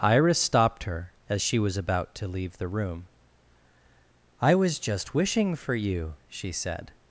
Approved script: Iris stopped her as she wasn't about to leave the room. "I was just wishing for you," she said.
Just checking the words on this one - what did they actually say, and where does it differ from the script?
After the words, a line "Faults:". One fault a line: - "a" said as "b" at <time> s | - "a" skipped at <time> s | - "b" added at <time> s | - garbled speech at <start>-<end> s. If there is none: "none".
Iris stopped her as she was about to leave the room. "I was just wishing for you," she said.
Faults:
- "wasn't" said as "was" at 1.6 s